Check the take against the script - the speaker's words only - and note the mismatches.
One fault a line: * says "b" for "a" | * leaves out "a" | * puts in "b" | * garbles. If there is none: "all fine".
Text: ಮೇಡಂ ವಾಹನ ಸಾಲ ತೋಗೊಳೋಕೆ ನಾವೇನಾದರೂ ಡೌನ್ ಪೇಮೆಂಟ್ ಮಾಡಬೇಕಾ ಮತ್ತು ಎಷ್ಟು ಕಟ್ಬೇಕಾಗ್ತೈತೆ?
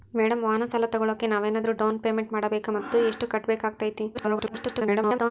* garbles